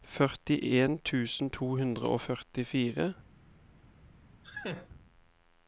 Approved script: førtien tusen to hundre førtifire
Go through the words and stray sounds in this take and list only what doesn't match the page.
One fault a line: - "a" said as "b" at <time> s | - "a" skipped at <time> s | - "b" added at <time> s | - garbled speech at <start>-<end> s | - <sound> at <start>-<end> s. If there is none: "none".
- "og" added at 2.1 s
- laugh at 4.4-4.9 s